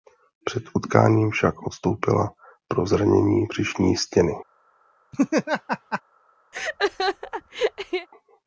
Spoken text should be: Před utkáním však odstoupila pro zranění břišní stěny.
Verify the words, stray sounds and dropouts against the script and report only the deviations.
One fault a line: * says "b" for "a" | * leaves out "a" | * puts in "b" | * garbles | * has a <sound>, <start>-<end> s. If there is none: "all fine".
* has a laugh, 5.1-6.0 s
* has a laugh, 6.5-8.1 s